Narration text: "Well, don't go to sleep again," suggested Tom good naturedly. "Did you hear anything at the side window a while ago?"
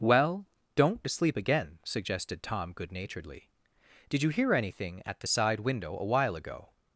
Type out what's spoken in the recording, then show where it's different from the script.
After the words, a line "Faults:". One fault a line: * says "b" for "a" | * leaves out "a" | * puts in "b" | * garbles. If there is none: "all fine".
"Well, don't to sleep again," suggested Tom good naturedly. "Did you hear anything at the side window a while ago?"
Faults:
* leaves out "go"